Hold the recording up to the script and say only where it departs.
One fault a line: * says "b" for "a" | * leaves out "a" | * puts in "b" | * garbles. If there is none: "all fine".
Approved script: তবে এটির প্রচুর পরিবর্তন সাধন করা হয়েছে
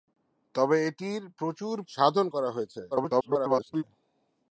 * leaves out "পরিবর্তন"
* garbles